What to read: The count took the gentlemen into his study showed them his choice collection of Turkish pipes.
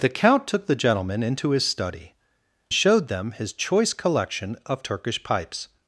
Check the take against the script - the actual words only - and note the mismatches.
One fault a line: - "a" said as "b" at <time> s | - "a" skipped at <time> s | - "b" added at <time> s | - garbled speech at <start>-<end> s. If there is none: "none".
none